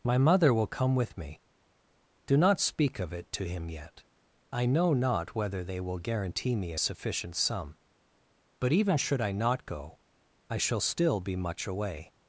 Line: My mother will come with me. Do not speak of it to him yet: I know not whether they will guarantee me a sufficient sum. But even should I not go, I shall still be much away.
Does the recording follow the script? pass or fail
pass